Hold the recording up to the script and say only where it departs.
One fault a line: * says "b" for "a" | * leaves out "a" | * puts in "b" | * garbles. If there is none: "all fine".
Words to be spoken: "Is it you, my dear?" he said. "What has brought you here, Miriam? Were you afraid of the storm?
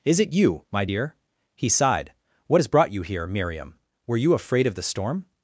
* says "sighed" for "said"